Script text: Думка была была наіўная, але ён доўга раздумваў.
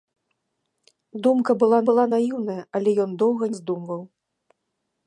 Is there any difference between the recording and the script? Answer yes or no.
no